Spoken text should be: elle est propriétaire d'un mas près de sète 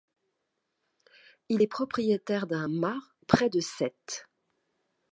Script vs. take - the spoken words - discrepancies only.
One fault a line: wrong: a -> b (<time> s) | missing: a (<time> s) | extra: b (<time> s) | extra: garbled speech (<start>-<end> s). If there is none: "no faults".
wrong: elle -> il (1.5 s)